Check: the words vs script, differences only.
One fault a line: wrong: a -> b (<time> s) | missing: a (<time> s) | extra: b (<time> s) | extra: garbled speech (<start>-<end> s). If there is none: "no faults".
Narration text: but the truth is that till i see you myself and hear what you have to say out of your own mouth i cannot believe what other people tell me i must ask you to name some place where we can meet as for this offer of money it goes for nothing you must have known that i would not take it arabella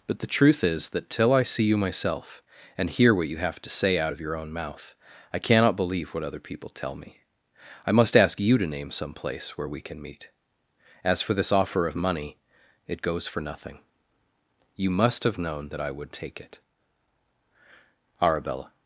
missing: not (16.1 s)